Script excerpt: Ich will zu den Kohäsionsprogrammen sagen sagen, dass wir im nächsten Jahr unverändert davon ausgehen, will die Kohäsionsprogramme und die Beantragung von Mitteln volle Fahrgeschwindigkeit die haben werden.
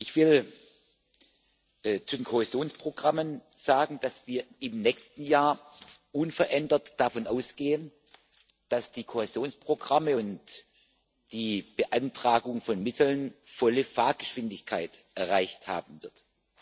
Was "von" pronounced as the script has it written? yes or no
yes